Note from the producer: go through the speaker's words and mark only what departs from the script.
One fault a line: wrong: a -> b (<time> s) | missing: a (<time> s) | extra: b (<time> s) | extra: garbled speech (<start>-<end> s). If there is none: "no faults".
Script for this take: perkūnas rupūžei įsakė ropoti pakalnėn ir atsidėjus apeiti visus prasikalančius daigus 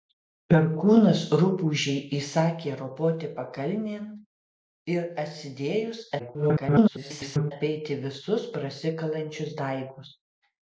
extra: garbled speech (6.2-7.5 s)